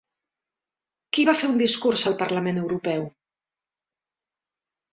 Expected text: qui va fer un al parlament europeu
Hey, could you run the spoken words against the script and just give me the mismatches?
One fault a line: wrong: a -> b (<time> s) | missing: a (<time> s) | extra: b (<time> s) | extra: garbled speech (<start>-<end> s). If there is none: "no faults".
extra: discurs (1.6 s)